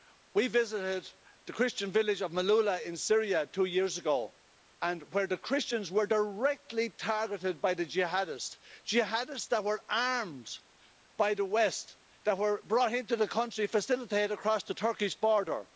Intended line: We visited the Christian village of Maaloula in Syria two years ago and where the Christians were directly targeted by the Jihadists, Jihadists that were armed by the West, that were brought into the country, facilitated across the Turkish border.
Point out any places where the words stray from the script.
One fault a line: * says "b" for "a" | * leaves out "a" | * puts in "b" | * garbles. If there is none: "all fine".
all fine